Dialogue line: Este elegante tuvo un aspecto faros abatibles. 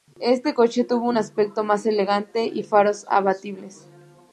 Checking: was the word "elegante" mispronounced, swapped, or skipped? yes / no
yes